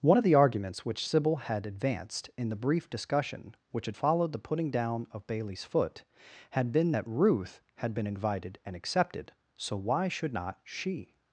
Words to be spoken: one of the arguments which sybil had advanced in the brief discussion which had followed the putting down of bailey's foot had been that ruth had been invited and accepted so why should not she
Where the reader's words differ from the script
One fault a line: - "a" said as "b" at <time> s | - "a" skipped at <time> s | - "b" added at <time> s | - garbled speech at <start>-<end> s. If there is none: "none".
none